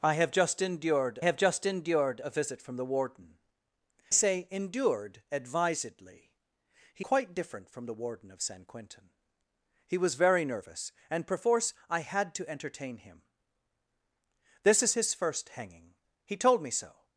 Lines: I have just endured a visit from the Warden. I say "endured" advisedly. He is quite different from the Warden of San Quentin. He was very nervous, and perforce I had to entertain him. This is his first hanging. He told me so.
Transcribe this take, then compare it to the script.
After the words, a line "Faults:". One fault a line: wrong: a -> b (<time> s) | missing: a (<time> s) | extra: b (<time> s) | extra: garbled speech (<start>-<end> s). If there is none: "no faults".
I have just endured have just endured a visit from the Warden. say "endured" advisedly. He quite different from the Warden of San Quentin. He was very nervous, and perforce I had to entertain him. This is his first hanging. He told me so.
Faults:
extra: have just endured (1.2 s)
missing: I (3.4 s)
missing: is (7.1 s)